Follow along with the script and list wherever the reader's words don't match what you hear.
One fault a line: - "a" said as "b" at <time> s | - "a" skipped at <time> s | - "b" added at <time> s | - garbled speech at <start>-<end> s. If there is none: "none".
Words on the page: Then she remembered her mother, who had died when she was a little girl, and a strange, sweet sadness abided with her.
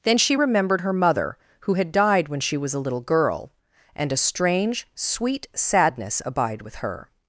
- "abided" said as "abide" at 6.2 s